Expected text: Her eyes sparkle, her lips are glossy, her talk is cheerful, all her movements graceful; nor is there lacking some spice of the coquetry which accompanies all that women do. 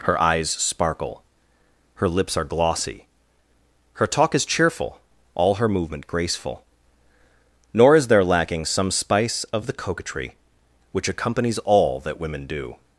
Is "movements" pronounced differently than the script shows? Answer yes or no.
yes